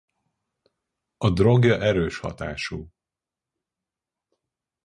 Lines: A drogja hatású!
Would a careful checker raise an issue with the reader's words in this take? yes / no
yes